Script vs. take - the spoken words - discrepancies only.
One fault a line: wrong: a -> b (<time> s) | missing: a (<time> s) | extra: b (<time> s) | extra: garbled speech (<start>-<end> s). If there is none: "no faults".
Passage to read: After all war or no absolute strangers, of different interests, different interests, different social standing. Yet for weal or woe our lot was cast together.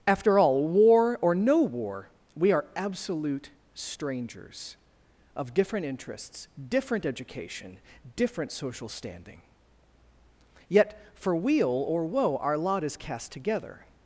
extra: war we are (1.6 s)
wrong: interests -> education (7.0 s)
wrong: was -> is (12.8 s)